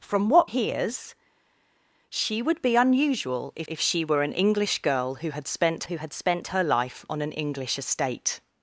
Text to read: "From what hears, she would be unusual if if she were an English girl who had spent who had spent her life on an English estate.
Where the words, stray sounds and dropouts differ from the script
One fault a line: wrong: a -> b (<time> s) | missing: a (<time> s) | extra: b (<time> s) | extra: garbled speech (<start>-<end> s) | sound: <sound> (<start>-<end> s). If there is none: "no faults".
no faults